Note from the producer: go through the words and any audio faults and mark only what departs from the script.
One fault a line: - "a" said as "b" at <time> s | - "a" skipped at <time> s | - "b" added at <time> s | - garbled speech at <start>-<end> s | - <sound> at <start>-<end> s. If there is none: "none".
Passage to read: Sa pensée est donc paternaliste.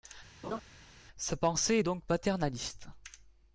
- laugh at 0.4-0.6 s